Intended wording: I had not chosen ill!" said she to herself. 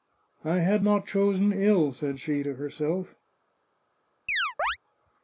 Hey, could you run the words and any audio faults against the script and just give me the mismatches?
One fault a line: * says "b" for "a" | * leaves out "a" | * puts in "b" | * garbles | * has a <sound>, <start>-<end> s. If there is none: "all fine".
* has a chirp, 4.3-4.8 s